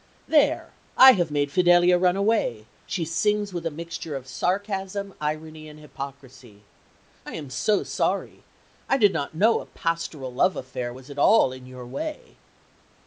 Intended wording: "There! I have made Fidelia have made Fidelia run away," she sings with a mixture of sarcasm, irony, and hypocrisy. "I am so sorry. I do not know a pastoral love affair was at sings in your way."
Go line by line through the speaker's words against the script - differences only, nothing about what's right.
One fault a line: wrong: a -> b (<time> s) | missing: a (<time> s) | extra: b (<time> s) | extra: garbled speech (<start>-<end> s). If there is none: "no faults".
missing: have made Fidelia (2.0 s)
wrong: do -> did (9.0 s)
wrong: sings -> all (11.2 s)